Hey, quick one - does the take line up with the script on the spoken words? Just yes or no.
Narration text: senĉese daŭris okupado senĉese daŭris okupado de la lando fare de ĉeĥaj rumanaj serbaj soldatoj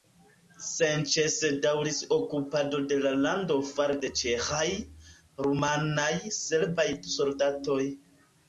no